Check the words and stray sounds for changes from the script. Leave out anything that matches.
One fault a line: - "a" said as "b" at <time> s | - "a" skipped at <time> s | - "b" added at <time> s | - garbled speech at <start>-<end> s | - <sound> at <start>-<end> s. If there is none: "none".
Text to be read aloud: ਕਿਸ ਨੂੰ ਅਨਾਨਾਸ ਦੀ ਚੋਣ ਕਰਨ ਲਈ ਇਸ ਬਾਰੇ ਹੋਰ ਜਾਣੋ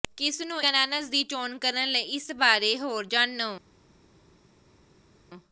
none